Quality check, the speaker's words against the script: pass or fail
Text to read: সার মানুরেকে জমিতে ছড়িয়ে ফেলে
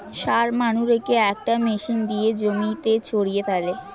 fail